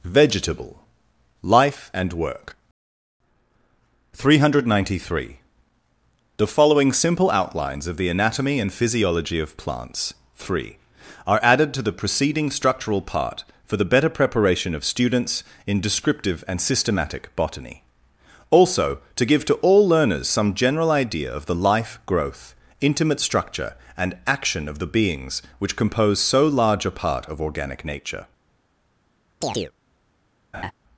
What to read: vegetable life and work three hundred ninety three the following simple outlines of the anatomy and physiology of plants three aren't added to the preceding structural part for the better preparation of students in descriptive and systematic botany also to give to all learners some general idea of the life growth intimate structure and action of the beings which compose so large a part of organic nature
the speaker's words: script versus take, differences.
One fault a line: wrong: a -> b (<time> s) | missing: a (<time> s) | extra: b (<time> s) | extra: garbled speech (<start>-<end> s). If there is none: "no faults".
wrong: aren't -> are (11.3 s)